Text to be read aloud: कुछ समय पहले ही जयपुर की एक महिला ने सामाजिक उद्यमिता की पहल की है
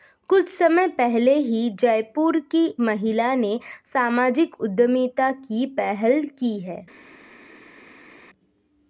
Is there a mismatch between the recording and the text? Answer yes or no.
yes